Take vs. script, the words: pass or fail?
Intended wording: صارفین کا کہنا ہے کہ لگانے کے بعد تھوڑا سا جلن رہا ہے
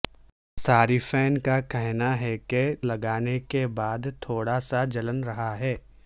pass